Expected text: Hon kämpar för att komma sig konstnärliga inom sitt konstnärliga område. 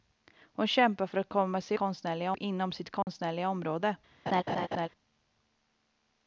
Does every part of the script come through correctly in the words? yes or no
yes